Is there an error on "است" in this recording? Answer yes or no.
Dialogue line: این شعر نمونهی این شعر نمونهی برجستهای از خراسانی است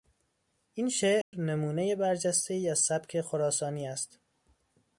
no